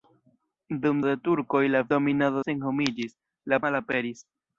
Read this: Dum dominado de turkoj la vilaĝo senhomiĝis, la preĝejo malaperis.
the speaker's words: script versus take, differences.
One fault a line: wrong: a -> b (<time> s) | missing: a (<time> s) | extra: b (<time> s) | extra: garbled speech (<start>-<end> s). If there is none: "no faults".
missing: dominado (1.0 s)
wrong: vilaĝo -> dominado (1.9 s)
missing: preĝejo (3.6 s)